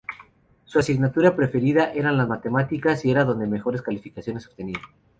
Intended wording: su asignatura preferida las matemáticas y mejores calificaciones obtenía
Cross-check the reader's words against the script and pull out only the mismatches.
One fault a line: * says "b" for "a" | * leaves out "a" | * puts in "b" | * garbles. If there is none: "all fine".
* puts in "eran"
* puts in "era donde"